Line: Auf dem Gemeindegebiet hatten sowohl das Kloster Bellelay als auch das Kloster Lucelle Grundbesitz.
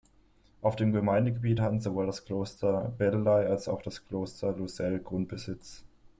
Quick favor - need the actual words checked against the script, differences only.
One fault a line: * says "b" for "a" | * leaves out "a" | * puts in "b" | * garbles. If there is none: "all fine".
all fine